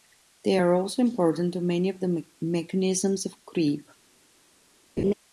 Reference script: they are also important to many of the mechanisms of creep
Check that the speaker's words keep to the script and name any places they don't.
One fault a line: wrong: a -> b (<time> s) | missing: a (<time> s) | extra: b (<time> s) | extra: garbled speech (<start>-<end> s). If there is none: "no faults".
no faults